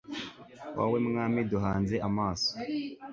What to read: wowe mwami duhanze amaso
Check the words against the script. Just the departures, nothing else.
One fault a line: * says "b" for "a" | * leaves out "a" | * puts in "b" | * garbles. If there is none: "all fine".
all fine